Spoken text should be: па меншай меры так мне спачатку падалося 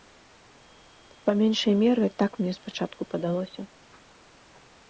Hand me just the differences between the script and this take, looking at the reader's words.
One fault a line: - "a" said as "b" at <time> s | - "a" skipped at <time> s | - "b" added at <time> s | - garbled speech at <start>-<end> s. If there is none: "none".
none